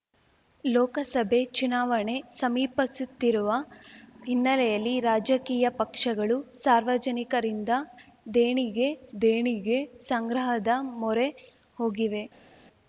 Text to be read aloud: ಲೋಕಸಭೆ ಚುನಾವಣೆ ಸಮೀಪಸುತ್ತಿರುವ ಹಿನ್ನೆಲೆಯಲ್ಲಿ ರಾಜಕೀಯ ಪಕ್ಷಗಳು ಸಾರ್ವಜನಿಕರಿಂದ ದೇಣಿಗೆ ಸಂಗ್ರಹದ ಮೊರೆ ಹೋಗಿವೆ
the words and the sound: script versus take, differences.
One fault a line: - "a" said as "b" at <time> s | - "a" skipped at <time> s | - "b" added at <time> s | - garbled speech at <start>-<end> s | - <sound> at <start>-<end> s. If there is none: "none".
- "ದೇಣಿಗೆ" added at 9.2 s